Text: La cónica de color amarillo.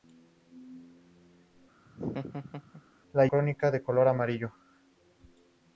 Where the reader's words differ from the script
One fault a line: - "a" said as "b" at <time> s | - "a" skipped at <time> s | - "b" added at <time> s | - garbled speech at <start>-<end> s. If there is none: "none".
none